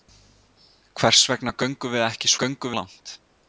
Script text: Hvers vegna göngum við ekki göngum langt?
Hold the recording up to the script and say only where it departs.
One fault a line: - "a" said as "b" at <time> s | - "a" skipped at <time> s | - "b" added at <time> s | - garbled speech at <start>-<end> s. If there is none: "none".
none